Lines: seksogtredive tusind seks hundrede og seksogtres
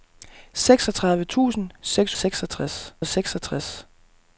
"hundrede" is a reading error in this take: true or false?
true